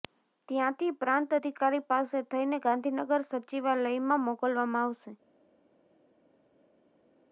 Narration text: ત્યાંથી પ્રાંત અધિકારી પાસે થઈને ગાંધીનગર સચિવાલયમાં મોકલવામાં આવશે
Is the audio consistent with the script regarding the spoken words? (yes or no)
yes